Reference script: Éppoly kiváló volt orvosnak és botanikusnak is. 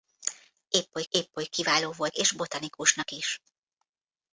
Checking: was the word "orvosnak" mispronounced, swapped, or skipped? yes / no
yes